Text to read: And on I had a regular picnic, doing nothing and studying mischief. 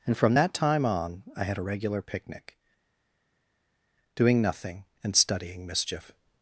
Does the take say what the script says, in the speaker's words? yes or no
no